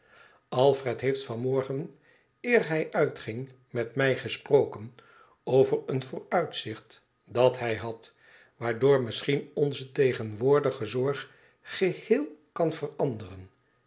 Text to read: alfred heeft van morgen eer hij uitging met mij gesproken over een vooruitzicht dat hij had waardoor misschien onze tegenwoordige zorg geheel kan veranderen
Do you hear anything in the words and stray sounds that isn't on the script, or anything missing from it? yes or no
no